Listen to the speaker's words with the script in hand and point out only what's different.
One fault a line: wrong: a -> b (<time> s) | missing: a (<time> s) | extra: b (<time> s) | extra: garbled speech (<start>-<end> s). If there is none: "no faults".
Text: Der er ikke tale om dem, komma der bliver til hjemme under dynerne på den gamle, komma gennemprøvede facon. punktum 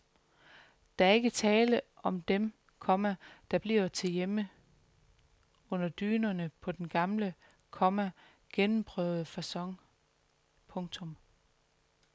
no faults